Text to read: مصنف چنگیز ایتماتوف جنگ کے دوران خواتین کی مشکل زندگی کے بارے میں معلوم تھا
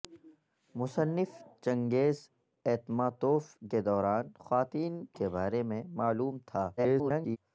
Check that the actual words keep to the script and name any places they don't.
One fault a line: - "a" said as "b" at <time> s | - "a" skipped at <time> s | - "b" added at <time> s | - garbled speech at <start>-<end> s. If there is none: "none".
- "جنگ" skipped at 3.4 s
- "کی مشکل زندگی" skipped at 4.9 s
- garbled speech at 6.8-7.4 s